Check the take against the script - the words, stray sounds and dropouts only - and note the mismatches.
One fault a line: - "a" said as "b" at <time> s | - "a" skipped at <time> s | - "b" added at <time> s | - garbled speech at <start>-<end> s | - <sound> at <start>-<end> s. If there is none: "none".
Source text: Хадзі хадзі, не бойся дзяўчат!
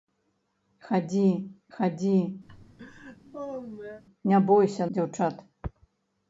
- laugh at 2.5-4.0 s